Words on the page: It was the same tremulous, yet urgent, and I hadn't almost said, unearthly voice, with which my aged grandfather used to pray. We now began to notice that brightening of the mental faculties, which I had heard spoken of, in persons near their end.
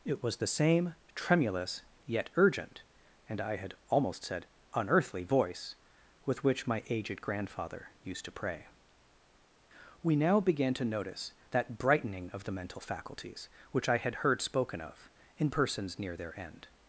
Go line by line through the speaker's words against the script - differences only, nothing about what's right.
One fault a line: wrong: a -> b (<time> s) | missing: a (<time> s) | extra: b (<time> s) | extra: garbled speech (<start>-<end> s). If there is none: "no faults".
wrong: hadn't -> had (3.6 s)